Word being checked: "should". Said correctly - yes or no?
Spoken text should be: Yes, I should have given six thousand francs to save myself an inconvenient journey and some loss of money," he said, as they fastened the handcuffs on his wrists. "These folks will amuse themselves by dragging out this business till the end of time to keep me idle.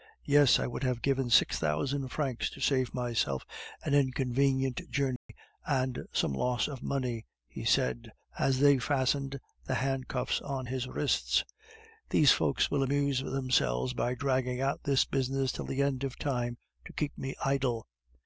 no